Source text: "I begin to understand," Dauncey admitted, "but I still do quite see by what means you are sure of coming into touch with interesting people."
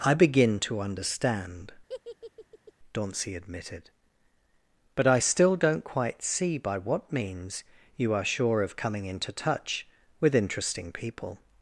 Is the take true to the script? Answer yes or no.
no